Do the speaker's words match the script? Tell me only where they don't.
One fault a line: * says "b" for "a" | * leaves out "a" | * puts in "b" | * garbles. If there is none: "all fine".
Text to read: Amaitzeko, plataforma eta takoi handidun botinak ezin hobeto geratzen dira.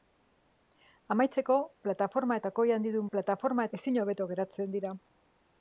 * leaves out "eta"
* says "plataforma" for "botinak"